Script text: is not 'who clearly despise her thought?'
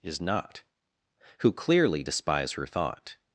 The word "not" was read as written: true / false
true